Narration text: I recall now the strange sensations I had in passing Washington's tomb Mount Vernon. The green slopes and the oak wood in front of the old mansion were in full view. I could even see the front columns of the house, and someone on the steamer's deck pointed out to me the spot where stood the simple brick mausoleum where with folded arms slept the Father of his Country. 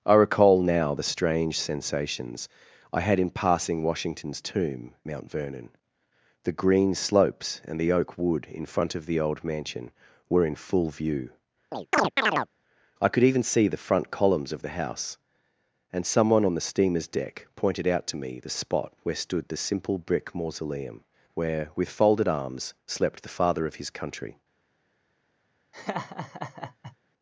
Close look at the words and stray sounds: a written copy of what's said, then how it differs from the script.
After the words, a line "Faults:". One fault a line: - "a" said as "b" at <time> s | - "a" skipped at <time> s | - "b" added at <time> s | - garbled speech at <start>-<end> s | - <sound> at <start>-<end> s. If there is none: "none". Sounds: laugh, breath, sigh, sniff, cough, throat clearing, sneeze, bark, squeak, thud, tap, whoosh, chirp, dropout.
I recall now the strange sensations I had in passing Washington's tomb Mount Vernon. The green slopes and the oak wood in front of the old mansion were in full view. I could even see the front columns of the house, and someone on the steamer's deck pointed out to me the spot where stood the simple brick mausoleum where with folded arms slept the Father of his Country.
Faults:
- chirp at 11.7-12.5 s
- laugh at 25.7-27.0 s